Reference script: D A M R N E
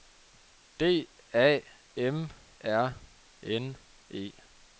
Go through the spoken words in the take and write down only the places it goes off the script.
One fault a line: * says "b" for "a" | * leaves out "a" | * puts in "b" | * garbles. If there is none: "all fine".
all fine